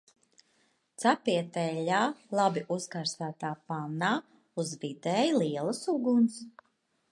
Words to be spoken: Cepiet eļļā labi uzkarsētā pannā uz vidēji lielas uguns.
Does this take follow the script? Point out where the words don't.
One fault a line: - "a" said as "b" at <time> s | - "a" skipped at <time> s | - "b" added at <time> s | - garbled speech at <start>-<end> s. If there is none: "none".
none